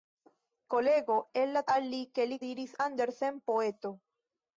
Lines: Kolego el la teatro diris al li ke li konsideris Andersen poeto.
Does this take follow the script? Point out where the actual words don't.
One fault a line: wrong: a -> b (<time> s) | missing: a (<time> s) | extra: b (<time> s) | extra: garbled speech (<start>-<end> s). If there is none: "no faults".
missing: teatro diris (1.6 s)
wrong: konsideris -> diris (2.4 s)